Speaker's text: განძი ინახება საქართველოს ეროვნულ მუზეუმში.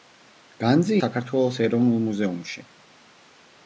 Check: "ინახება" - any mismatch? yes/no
yes